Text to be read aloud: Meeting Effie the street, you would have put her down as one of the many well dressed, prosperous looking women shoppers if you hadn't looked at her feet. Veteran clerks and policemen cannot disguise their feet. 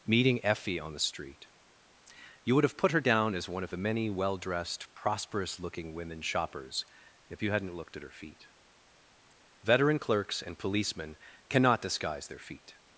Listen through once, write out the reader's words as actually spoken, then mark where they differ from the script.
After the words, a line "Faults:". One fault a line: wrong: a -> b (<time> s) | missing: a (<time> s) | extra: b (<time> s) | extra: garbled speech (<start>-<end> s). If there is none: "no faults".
Meeting Effie on the street, you would have put her down as one of the many well dressed, prosperous looking women shoppers if you hadn't looked at her feet. Veteran clerks and policemen cannot disguise their feet.
Faults:
extra: on (0.8 s)